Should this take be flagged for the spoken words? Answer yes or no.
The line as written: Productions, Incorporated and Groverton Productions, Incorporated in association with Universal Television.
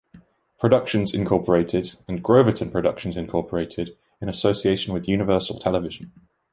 no